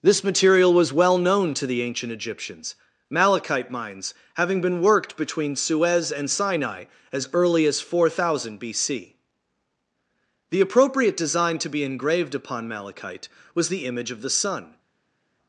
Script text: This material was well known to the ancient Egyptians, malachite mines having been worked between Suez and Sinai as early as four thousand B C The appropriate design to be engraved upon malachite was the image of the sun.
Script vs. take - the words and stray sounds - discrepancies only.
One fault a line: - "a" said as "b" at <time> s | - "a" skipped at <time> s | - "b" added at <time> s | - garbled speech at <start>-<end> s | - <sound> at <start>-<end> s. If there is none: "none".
none